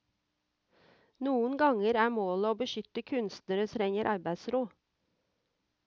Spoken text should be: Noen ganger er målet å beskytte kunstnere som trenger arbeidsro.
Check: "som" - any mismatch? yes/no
yes